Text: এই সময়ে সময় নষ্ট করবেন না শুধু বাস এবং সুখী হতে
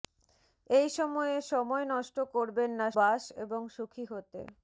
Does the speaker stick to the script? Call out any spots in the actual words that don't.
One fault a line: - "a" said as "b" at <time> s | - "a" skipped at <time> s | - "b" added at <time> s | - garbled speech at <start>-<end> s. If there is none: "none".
- "শুধু" skipped at 2.9 s